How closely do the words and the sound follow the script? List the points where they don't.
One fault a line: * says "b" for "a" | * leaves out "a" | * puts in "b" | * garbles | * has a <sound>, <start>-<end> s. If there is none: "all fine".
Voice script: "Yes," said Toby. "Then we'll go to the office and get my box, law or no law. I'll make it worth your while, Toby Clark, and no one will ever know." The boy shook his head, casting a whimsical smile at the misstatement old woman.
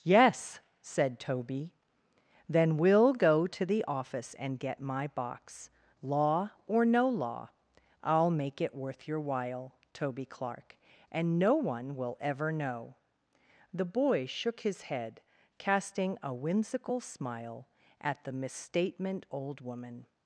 all fine